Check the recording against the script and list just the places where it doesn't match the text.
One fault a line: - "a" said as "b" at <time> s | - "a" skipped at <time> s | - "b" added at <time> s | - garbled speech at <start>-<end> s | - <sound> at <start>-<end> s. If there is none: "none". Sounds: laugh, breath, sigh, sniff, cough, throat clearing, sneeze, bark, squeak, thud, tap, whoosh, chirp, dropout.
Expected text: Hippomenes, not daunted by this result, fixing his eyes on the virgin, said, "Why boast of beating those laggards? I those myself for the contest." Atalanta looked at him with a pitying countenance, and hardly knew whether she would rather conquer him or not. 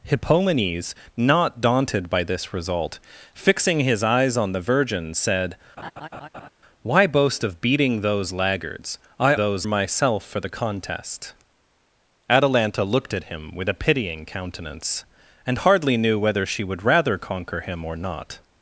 - laugh at 5.8-6.5 s